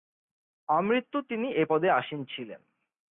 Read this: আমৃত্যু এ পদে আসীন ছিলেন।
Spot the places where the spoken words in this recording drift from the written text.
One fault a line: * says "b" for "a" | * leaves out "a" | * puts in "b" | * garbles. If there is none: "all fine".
* puts in "তিনি"